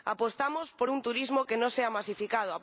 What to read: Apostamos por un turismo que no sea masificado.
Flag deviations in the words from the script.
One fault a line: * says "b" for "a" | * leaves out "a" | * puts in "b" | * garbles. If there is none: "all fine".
all fine